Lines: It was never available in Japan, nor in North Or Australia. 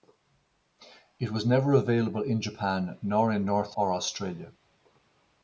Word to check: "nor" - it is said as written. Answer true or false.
true